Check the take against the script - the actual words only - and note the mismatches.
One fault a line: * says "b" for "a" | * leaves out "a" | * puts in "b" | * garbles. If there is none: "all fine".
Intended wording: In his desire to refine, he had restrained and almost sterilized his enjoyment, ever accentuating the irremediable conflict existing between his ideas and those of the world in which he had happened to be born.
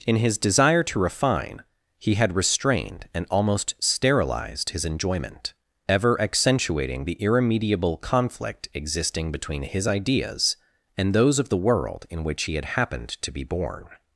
all fine